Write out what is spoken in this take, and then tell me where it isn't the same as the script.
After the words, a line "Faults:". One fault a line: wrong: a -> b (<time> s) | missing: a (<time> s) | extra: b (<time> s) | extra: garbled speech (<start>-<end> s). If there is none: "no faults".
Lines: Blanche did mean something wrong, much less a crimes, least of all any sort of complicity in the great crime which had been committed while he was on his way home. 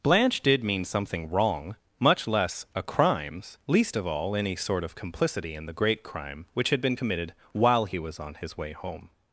Blanche did mean something wrong, much less a crimes, least of all any sort of complicity in the great crime which had been committed while he was on his way home.
Faults:
no faults